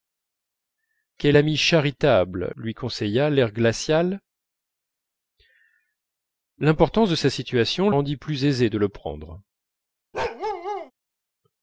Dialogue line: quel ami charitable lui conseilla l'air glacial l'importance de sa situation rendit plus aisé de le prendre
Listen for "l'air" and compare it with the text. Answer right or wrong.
right